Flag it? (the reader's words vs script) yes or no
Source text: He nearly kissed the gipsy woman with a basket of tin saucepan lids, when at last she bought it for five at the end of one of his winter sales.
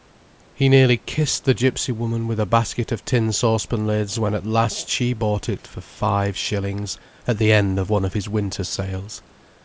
yes